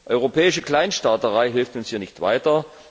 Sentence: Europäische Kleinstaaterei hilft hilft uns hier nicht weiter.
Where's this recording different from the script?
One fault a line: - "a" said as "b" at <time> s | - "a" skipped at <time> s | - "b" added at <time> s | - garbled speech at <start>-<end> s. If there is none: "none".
- "hilft" skipped at 1.8 s